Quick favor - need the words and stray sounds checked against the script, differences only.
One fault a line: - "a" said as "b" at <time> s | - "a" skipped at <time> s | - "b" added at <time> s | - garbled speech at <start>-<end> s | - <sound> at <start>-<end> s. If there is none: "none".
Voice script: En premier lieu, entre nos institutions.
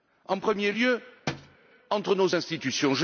- thud at 1.3-1.6 s